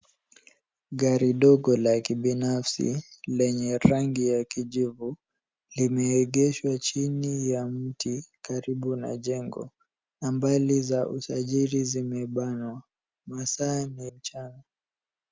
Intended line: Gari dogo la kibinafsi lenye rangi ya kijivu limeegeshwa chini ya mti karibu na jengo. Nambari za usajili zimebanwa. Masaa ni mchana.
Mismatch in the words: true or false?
false